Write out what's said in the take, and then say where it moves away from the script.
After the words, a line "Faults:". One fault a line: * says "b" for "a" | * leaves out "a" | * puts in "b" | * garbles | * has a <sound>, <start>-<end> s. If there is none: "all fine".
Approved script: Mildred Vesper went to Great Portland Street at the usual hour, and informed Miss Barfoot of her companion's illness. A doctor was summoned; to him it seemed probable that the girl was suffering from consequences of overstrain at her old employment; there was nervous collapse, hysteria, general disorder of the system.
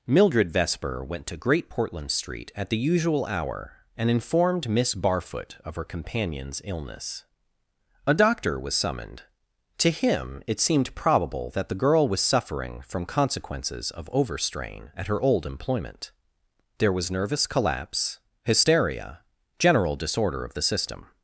Mildred Vesper went to Great Portland Street at the usual hour, and informed Miss Barfoot of her companion's illness. A doctor was summoned; to him it seemed probable that the girl was suffering from consequences of overstrain at her old employment; there was nervous collapse, hysteria, general disorder of the system.
Faults:
all fine